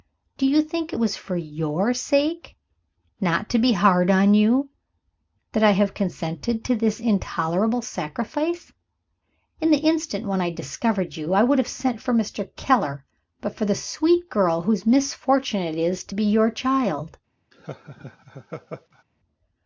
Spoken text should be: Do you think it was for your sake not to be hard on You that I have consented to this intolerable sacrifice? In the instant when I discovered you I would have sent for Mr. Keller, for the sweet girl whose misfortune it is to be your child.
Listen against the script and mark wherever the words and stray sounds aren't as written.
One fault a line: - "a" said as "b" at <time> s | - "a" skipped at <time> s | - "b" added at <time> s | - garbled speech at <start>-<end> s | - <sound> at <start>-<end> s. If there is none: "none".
- "but" added at 13.4 s
- laugh at 17.5-19.0 s